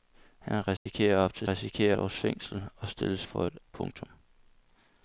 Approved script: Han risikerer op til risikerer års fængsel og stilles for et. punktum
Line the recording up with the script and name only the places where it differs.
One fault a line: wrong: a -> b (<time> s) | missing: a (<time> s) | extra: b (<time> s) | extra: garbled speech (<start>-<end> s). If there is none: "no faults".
no faults